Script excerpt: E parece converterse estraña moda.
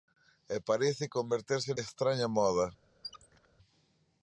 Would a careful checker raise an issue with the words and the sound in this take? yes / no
yes